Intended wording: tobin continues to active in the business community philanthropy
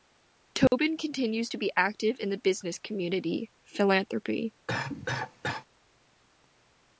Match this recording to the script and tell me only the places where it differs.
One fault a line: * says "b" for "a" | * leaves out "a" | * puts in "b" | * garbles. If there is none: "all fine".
* puts in "be"